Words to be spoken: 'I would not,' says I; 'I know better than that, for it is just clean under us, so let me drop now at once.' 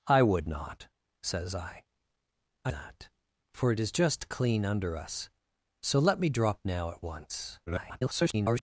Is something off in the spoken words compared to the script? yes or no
yes